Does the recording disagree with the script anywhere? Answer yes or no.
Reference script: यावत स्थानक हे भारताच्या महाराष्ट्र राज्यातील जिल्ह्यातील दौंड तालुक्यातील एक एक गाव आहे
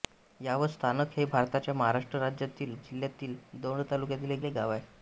no